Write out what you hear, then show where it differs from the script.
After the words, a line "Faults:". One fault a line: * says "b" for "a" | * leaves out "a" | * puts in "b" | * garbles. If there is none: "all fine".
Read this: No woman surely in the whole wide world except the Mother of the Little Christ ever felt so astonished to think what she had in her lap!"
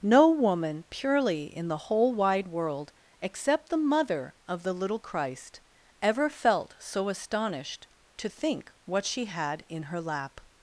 No woman purely in the whole wide world except the Mother of the Little Christ ever felt so astonished to think what she had in her lap!"
Faults:
* says "purely" for "surely"